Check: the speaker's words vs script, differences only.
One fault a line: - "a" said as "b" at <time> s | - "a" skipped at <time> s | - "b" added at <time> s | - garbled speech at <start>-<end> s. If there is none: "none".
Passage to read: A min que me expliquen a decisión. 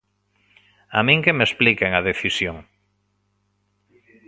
none